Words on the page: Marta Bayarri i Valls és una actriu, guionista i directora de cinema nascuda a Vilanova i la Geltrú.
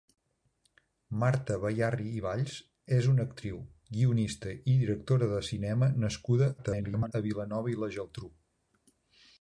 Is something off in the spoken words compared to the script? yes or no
yes